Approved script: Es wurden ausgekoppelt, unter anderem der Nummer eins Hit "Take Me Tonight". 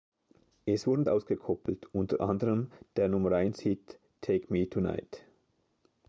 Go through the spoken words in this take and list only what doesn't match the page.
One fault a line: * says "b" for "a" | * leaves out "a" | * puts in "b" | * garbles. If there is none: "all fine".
all fine